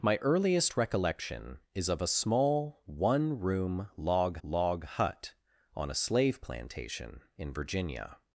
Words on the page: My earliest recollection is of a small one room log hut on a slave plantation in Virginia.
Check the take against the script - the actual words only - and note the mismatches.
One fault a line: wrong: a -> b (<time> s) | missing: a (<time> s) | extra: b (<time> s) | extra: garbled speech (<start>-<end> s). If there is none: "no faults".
extra: log (4.4 s)